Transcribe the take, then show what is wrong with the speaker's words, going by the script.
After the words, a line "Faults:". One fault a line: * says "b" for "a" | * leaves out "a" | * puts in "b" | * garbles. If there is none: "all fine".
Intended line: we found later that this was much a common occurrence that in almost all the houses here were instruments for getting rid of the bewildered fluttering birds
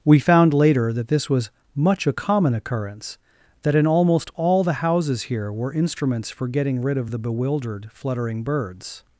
we found later that this was much a common occurrence that in almost all the houses here were instruments for getting rid of the bewildered fluttering birds
Faults:
all fine